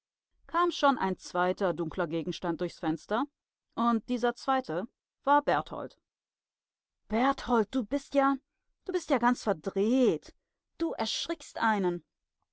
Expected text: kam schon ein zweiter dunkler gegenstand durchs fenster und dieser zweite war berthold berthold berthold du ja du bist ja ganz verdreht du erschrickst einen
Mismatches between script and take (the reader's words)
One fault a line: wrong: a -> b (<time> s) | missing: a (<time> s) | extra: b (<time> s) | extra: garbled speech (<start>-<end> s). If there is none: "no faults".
wrong: berthold du -> du bist (7.7 s)